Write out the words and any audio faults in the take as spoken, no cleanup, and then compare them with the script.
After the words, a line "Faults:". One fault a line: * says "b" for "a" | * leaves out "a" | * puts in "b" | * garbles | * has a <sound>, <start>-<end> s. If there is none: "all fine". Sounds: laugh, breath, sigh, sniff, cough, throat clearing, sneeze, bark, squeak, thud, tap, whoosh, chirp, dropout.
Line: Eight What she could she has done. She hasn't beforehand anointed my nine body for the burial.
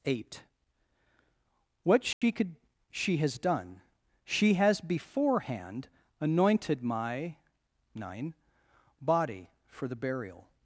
Eight What she could she has done. She has beforehand anointed my nine body for the burial.
Faults:
* has a dropout, 2.1-2.2 s
* says "has" for "hasn't"